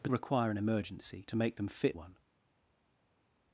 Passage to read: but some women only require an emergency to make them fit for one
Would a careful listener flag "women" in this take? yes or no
yes